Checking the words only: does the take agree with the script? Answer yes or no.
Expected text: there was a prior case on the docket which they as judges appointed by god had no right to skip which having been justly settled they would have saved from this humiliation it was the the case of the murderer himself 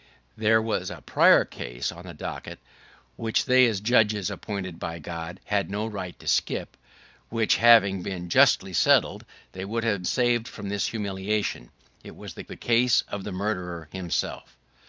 yes